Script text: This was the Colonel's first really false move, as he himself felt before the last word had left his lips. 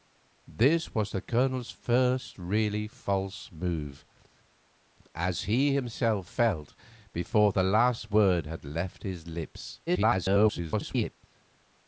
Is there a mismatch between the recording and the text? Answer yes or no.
yes